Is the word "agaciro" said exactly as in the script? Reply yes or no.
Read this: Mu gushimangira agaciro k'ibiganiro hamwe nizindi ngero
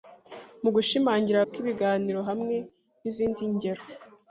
no